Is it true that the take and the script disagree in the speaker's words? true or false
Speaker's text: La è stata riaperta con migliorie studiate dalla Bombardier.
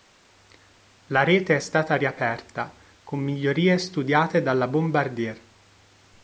true